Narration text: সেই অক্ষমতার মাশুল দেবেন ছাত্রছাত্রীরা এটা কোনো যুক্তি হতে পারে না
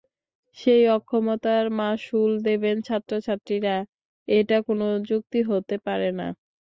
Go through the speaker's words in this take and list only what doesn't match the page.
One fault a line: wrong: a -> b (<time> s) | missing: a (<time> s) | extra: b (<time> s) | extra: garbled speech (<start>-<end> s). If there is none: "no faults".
no faults